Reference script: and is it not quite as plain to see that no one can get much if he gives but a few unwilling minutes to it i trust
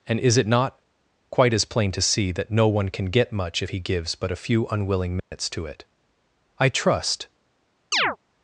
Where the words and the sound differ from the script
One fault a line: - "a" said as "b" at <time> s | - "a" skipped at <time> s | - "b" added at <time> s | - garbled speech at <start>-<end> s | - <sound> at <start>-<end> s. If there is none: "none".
- dropout at 5.2-5.3 s
- chirp at 7.9-8.2 s